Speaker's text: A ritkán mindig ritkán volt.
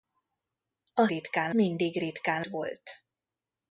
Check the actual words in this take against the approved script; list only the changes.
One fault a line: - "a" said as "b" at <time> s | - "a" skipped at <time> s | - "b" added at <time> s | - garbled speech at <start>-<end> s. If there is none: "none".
none